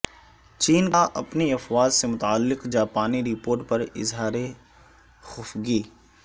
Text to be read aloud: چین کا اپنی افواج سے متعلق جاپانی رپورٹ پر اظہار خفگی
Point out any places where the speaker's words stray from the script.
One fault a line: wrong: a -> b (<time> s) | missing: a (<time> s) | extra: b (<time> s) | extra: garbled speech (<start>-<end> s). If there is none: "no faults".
no faults